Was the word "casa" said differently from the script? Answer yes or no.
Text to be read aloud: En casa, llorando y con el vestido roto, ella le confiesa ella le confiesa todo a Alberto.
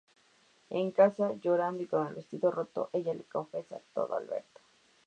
no